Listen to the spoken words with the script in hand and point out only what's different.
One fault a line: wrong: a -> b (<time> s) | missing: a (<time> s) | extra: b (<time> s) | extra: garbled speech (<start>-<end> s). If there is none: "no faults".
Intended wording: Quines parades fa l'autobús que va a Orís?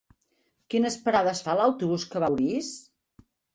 no faults